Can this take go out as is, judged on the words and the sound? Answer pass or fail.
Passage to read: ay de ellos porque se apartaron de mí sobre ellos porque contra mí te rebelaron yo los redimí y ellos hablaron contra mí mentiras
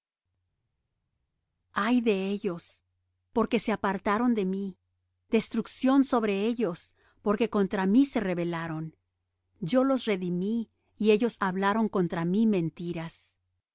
fail